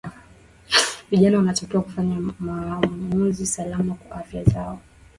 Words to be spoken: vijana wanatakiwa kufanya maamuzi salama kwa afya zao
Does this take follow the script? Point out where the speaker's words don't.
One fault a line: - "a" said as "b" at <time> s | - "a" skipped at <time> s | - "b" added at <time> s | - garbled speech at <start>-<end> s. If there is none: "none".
none